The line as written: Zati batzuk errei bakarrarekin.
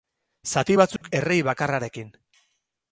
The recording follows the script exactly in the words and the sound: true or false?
false